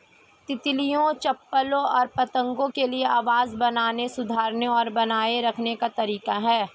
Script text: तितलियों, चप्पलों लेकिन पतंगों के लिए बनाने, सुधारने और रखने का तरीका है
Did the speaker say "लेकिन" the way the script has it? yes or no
no